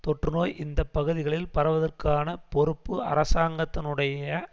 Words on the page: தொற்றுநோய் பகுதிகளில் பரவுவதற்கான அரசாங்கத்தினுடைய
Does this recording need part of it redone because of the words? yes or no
yes